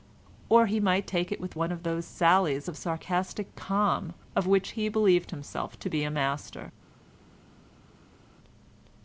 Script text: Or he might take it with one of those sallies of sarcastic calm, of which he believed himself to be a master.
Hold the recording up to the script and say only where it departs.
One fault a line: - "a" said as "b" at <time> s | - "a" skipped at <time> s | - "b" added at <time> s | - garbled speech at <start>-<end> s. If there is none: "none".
none